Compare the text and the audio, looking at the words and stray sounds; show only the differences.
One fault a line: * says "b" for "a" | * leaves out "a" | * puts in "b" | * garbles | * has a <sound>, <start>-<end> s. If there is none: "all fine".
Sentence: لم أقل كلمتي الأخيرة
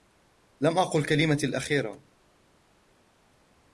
all fine